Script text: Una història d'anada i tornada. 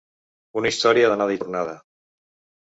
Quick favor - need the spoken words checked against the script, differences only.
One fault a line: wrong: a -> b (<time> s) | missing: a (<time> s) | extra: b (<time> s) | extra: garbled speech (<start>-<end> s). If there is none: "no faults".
no faults